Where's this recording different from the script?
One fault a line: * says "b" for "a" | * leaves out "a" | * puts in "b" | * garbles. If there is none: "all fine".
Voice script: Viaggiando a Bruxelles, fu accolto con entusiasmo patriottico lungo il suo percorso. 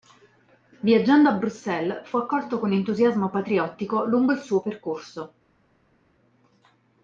all fine